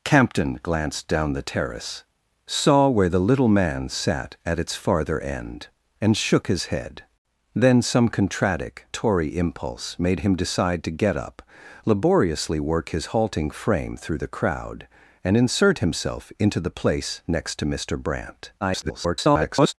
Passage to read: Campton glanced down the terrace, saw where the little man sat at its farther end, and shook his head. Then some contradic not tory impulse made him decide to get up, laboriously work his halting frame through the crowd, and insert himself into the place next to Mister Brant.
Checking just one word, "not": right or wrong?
wrong